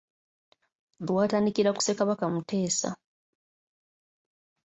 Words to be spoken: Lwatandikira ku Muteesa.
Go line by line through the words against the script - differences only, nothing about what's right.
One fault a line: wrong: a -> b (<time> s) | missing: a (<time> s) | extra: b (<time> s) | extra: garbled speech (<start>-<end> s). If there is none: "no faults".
extra: Ssekabaka (1.8 s)